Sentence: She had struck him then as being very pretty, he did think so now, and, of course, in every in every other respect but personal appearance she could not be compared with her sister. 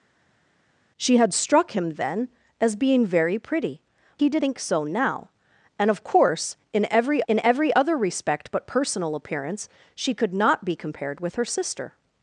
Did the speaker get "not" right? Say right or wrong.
right